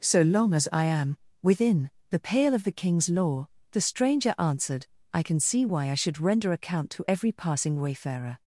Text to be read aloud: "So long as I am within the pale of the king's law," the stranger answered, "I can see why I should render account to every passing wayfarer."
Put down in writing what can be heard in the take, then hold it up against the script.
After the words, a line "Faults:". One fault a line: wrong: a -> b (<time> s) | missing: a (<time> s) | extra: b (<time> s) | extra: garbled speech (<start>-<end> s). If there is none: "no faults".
"So long as I am within the pale of the king's law," the stranger answered, "I can see why I should render account to every passing wayfarer."
Faults:
no faults